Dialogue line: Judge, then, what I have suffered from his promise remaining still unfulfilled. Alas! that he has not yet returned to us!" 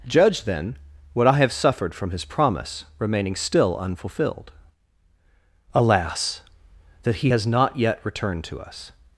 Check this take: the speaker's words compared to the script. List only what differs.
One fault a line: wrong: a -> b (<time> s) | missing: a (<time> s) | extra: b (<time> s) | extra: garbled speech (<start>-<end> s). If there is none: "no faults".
no faults